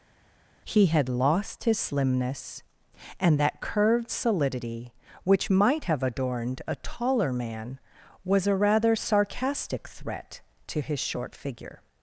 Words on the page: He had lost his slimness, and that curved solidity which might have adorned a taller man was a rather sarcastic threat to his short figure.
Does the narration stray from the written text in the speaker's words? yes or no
no